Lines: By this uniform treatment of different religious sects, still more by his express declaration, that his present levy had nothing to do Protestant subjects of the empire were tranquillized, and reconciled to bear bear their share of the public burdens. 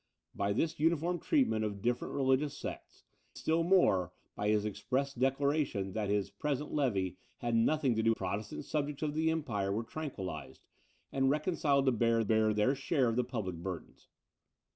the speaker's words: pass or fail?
pass